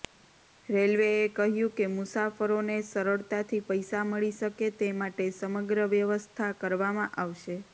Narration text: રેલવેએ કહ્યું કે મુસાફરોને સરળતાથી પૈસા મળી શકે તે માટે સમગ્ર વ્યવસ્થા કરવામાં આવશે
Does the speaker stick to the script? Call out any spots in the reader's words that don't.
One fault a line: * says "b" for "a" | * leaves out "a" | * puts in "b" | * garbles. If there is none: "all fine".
all fine